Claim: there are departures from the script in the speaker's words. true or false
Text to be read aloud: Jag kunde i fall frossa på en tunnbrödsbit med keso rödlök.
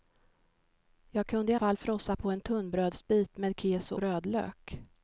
false